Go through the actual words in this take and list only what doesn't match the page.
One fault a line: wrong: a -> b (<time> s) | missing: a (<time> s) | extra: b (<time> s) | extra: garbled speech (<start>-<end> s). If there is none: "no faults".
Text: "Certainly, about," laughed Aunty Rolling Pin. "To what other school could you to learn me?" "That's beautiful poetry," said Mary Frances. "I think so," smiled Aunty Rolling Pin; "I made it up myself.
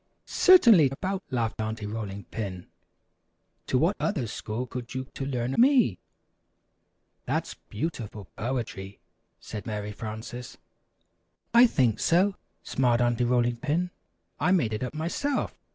no faults